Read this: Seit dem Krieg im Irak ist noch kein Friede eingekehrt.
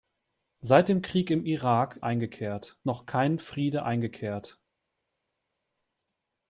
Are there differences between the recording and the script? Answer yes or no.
yes